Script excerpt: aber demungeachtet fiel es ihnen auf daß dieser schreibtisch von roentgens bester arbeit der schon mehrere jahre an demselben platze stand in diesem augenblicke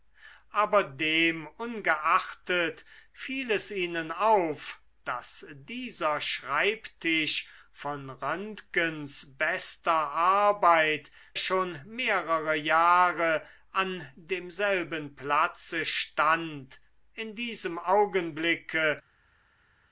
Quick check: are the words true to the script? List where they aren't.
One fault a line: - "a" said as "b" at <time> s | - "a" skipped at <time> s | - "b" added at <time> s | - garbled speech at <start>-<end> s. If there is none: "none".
- "der" skipped at 11.1 s